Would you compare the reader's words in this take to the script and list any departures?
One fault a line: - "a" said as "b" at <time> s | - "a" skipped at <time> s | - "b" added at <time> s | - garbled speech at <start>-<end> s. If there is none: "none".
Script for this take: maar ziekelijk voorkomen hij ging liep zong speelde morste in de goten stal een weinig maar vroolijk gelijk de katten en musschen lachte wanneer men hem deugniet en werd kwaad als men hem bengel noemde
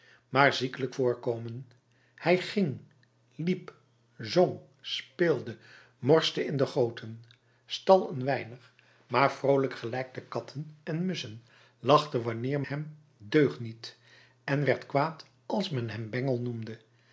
- "men" skipped at 12.6 s